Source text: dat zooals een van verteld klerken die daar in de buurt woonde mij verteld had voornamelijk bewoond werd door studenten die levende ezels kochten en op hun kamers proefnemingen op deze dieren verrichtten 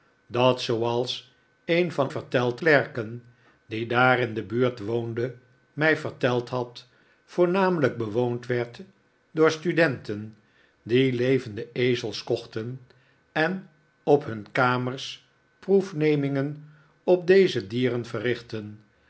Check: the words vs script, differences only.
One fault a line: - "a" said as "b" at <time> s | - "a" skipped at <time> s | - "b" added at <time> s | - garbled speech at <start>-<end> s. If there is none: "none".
none